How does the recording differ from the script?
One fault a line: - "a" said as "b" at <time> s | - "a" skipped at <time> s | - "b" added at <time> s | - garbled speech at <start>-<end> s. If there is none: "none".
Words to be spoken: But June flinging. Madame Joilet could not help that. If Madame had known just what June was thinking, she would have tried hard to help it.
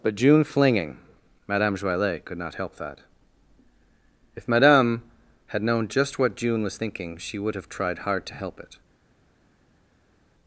none